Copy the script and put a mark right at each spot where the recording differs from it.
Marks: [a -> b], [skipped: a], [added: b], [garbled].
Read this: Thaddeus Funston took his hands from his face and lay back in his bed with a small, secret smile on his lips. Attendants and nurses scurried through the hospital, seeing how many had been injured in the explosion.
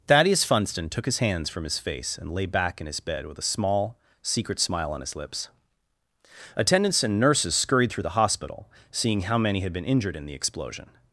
Thaddeus Funston took his hands from his face and lay back in his bed with a small, secret smile on his lips. Attendants and nurses scurried through the hospital, seeing how many had been injured in the explosion.